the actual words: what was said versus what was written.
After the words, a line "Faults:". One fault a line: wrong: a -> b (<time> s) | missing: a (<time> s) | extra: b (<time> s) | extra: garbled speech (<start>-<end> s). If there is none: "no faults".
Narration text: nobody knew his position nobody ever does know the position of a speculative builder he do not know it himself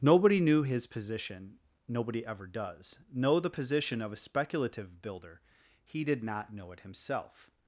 nobody knew his position nobody ever does know the position of a speculative builder he did not know it himself
Faults:
wrong: do -> did (6.0 s)